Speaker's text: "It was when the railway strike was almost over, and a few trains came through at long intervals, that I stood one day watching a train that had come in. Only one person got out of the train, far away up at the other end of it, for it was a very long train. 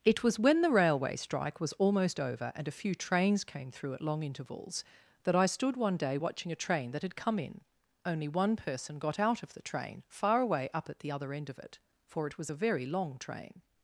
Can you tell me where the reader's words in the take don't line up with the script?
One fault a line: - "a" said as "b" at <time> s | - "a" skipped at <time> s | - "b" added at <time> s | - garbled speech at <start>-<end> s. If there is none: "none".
none